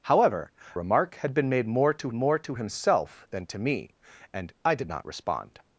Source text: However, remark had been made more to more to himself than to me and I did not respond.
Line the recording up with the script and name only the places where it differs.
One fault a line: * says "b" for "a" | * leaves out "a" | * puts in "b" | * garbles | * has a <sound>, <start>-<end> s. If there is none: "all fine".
all fine